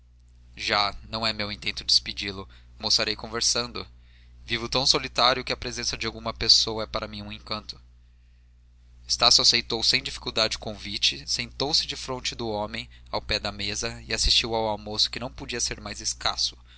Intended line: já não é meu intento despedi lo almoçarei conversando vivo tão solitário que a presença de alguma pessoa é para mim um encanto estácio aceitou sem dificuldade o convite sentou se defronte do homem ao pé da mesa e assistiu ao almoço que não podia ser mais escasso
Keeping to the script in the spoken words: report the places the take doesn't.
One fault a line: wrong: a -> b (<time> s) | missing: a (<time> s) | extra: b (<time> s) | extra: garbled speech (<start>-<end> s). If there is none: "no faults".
no faults